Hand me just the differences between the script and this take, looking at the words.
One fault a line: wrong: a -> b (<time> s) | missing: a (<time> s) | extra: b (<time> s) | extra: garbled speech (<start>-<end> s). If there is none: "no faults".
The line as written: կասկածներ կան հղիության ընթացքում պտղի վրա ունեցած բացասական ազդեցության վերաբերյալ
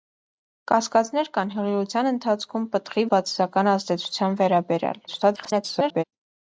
missing: վրա ունեցած (3.0 s)
extra: garbled speech (5.1-6.0 s)